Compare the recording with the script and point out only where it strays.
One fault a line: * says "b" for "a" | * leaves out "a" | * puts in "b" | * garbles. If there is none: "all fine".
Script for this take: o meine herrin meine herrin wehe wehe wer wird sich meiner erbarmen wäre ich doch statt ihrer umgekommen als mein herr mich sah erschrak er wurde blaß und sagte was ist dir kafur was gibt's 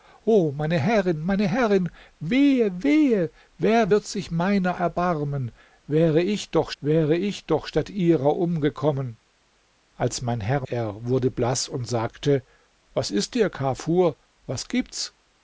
* puts in "wäre ich doch"
* leaves out "mich sah erschrak"